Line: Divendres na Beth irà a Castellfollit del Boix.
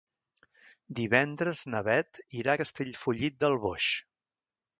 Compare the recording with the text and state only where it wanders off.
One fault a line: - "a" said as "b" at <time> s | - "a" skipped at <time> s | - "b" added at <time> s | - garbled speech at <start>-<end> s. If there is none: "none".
none